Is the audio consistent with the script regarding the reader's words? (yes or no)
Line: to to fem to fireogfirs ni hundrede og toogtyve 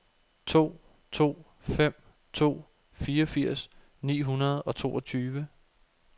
yes